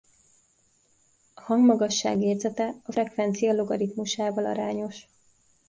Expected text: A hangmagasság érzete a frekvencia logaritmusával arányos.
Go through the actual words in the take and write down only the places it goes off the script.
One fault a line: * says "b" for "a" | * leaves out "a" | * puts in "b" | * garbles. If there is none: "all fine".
all fine